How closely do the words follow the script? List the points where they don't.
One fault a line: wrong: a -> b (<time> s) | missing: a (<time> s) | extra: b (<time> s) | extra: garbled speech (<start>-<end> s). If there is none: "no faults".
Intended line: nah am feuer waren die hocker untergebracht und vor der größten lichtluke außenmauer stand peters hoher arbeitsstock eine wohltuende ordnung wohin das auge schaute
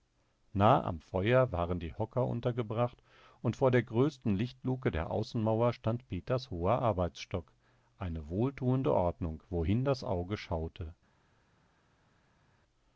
extra: der (4.9 s)